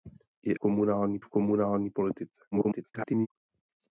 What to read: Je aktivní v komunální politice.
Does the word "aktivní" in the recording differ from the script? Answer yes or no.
yes